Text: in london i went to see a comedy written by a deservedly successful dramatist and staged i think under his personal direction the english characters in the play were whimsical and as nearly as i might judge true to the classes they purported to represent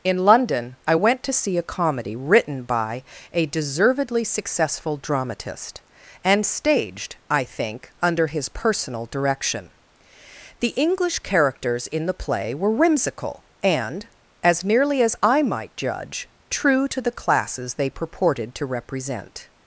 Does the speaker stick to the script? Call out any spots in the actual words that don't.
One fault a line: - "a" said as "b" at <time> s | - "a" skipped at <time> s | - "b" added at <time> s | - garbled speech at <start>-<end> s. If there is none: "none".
none